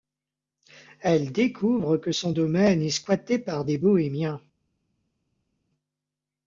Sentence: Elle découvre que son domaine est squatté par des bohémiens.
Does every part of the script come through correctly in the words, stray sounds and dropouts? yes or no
yes